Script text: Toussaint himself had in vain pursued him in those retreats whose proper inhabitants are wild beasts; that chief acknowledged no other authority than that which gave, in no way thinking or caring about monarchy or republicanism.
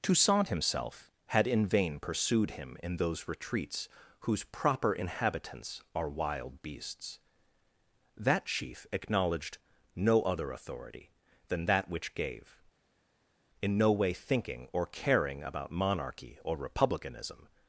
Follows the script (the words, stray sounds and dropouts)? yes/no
yes